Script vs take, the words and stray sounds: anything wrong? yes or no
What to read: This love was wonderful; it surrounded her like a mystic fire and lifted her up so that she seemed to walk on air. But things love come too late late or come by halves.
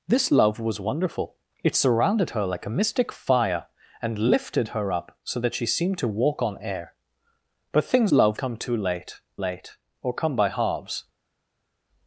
no